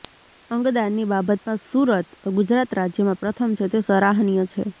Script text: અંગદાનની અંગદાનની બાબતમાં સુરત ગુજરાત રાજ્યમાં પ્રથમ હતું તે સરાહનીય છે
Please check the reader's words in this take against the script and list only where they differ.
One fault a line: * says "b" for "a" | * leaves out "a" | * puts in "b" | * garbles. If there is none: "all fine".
* leaves out "અંગદાનની"
* says "છે" for "હતું"